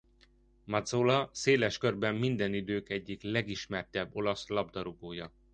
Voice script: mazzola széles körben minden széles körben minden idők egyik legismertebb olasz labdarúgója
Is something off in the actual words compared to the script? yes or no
yes